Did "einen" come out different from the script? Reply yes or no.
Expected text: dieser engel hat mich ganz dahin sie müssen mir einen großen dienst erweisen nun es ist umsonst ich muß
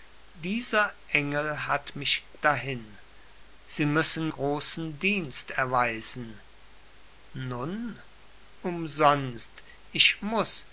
yes